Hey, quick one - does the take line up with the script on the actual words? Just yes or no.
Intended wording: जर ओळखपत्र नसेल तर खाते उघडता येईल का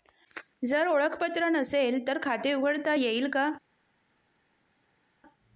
yes